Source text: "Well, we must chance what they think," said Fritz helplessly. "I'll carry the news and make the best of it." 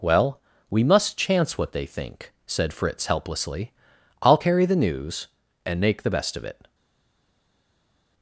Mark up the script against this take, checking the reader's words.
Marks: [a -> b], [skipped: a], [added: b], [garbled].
"Well, we must chance what they think," said Fritz helplessly. "I'll carry the news and make the best of it."